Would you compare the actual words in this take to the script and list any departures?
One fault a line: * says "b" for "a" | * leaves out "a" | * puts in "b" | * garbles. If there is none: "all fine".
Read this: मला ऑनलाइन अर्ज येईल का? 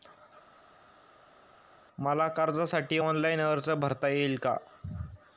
* puts in "कर्जासाठी"
* puts in "भरता"